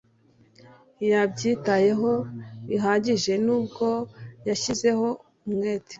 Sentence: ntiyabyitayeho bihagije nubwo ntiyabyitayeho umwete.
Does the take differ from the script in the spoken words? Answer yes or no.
yes